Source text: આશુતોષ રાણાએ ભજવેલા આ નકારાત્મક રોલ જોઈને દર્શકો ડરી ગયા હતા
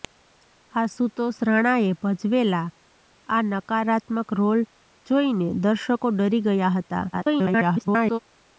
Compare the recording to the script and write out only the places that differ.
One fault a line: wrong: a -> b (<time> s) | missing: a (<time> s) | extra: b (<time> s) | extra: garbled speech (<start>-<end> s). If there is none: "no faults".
extra: garbled speech (7.1-8.2 s)